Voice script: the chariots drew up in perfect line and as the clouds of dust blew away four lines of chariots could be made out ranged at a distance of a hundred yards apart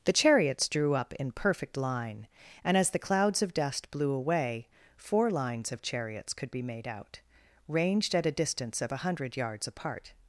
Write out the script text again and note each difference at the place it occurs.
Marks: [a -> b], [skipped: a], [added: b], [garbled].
the chariots drew up in perfect line and as the clouds of dust blew away four lines of chariots could be made out ranged at a distance of a hundred yards apart